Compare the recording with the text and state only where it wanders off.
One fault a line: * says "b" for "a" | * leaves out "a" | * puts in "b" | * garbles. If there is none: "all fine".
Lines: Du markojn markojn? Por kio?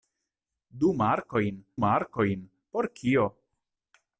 all fine